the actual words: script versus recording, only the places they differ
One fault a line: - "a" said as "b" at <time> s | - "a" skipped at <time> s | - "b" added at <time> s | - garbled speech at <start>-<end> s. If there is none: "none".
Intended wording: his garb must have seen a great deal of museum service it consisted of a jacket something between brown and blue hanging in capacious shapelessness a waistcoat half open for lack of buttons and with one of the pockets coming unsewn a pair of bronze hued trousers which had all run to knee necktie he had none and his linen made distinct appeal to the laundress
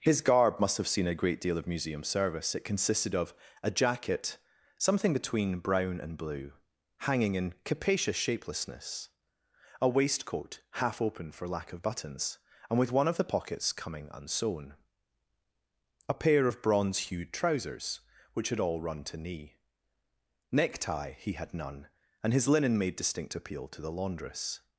none